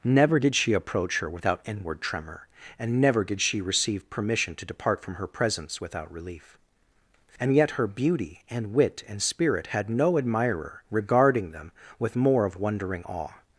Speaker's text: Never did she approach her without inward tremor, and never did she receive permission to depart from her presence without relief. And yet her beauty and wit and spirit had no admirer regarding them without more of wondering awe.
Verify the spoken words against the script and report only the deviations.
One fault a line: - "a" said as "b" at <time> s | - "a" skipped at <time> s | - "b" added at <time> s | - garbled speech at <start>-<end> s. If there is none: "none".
- "without" said as "with" at 12.0 s